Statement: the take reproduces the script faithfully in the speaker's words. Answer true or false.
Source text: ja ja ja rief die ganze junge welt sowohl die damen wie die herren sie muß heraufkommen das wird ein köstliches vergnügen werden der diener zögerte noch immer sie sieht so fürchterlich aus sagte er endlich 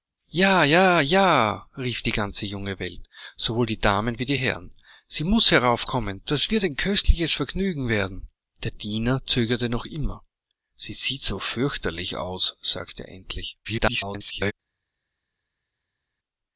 false